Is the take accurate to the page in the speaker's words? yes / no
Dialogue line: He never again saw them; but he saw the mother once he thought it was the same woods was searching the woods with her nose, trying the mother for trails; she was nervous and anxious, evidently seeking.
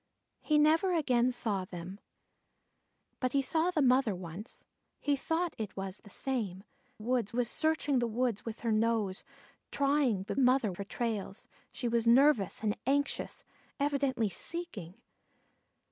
yes